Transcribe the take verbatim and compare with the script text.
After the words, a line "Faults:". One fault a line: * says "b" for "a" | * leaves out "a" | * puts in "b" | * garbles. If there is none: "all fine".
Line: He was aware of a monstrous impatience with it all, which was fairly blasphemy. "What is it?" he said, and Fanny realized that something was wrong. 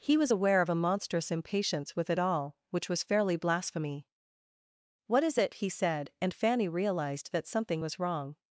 He was aware of a monstrous impatience with it all, which was fairly blasphemy. "What is it?" he said, and Fanny realized that something was wrong.
Faults:
all fine